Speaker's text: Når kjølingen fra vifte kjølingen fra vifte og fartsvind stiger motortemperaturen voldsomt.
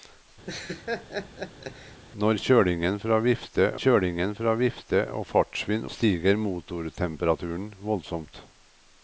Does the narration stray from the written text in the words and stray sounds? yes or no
yes